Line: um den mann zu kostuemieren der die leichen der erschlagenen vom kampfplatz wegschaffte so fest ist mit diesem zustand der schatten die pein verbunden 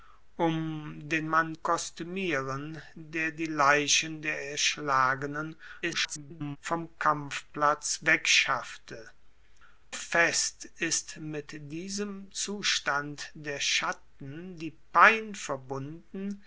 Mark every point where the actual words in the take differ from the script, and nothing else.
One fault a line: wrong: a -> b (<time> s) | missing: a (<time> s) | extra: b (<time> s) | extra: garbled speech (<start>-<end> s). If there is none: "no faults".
missing: zu (1.5 s)
extra: garbled speech (5.8-6.6 s)
missing: so (9.1 s)